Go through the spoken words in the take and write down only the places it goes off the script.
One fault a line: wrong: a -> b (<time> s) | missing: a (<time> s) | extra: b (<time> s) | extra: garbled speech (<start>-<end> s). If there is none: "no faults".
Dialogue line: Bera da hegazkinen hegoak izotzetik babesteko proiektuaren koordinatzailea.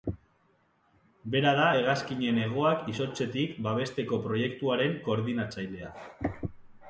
no faults